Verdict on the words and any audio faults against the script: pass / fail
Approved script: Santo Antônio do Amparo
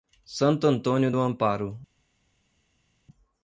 pass